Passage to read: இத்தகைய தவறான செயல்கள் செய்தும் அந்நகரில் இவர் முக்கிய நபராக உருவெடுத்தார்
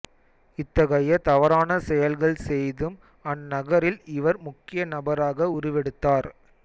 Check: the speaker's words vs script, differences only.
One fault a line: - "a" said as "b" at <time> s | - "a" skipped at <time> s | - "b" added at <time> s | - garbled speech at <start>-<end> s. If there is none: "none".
none